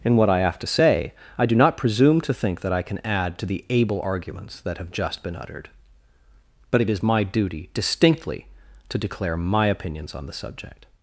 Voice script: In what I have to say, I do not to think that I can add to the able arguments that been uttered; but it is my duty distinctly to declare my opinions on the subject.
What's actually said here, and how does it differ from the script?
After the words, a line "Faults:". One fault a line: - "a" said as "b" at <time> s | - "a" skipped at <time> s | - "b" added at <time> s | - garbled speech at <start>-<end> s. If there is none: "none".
In what I have to say, I do not presume to think that I can add to the able arguments that have just been uttered; but it is my duty distinctly to declare my opinions on the subject.
Faults:
- "presume" added at 1.8 s
- "have just" added at 4.8 s